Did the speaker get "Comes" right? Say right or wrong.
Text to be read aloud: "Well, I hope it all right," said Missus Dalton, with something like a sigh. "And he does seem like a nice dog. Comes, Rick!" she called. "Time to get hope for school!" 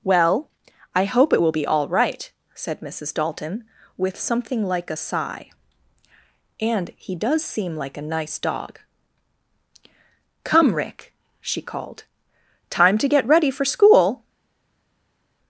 wrong